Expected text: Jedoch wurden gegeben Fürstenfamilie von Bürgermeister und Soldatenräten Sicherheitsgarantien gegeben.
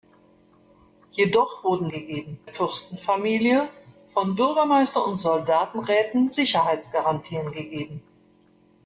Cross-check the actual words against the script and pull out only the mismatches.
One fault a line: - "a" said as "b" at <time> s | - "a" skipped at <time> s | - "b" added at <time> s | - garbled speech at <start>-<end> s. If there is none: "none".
none